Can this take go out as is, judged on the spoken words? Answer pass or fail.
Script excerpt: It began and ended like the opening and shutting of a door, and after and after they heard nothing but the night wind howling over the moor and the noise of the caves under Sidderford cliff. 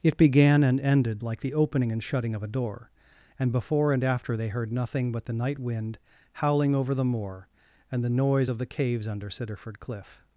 fail